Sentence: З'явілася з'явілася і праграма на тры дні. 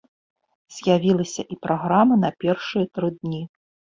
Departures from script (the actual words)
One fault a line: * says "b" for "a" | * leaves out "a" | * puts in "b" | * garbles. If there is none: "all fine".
* leaves out "з'явілася"
* puts in "першыя"